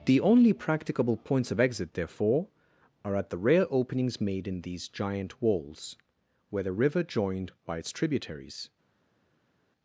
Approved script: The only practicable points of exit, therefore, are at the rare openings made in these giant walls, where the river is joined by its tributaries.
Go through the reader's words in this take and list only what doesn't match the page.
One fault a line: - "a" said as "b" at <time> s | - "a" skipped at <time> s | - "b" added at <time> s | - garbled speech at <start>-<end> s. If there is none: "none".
- "is" skipped at 7.0 s